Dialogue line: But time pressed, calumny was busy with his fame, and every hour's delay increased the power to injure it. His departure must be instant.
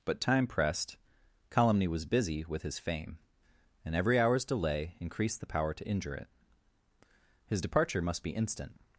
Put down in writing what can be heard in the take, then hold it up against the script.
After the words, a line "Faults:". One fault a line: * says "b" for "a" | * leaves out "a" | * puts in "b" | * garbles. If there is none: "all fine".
But time pressed, calumny was busy with his fame, and every hour's delay increased the power to injure it. His departure must be instant.
Faults:
all fine